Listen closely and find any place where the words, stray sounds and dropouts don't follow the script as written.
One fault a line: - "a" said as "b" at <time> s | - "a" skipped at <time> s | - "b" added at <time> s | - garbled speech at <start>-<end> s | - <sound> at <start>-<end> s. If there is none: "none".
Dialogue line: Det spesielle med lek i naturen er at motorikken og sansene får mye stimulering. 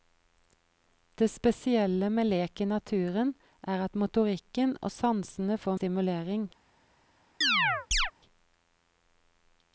- "mye" skipped at 5.8 s
- chirp at 7.4-8.1 s